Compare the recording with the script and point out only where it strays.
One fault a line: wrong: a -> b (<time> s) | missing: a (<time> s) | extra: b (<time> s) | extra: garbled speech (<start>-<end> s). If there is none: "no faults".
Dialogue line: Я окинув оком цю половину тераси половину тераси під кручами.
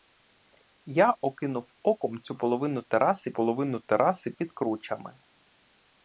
no faults